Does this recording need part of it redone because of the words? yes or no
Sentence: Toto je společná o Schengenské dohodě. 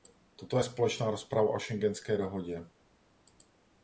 yes